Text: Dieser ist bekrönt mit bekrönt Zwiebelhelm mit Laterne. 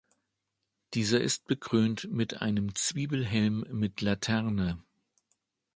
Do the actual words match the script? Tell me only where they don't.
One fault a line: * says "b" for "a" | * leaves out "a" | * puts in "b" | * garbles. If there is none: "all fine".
* says "einem" for "bekrönt"